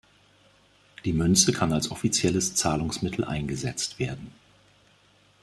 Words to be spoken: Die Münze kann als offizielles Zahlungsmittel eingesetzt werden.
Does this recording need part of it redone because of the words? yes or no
no